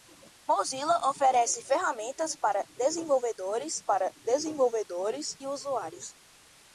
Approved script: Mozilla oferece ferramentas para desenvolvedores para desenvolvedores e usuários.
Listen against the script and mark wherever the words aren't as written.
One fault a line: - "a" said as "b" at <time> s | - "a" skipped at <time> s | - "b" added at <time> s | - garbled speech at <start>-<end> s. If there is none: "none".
none